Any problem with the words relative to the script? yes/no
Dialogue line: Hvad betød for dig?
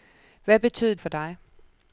no